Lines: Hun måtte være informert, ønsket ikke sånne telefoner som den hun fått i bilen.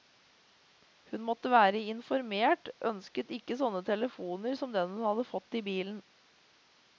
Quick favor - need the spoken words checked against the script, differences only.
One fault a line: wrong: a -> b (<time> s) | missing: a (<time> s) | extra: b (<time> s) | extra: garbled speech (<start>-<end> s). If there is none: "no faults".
extra: hadde (5.1 s)